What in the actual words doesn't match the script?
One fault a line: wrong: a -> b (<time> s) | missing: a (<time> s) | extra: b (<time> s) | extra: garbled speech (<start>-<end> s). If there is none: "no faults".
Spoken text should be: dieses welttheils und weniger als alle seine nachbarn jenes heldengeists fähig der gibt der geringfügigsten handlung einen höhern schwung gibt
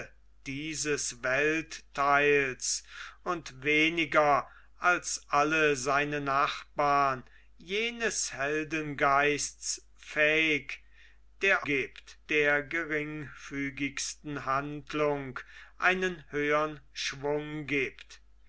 no faults